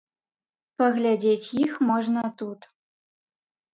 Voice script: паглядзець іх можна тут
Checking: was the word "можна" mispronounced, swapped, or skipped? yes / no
no